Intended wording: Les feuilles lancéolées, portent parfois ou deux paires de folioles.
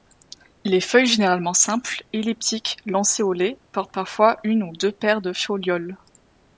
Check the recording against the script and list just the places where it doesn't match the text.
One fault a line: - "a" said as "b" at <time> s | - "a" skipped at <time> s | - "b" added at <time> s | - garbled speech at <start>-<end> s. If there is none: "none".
- "généralement simples elliptiques" added at 1.1 s
- "une" added at 4.4 s